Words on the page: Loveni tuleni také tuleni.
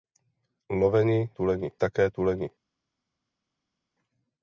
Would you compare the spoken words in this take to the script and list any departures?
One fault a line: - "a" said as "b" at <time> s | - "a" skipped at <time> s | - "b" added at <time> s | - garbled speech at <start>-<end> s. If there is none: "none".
none